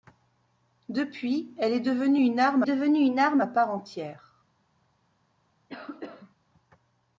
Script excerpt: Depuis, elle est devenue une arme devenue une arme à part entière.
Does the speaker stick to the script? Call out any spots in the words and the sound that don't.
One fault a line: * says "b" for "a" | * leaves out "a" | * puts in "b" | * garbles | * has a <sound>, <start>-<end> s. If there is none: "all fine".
* has a cough, 5.7-6.4 s